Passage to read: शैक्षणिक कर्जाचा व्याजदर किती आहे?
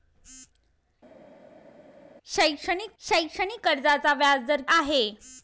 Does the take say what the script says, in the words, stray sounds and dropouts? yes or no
no